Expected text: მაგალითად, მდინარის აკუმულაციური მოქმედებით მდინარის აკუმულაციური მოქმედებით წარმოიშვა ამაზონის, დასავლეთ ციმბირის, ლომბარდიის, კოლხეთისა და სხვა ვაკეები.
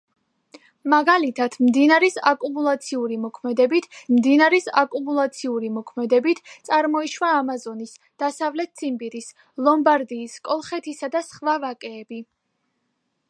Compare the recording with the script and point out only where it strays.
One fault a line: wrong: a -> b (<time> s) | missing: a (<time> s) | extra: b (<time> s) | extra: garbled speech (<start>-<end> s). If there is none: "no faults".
no faults